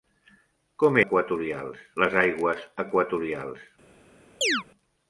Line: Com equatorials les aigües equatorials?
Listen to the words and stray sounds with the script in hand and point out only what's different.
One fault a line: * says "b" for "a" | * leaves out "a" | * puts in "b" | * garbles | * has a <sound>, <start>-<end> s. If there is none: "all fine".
* has a chirp, 4.4-4.6 s